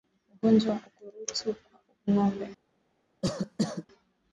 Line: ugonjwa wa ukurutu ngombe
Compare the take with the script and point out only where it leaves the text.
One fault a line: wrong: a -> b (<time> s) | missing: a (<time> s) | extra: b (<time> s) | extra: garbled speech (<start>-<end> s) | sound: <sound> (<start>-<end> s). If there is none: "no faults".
extra: kwa (1.6 s)
sound: cough (3.2-3.9 s)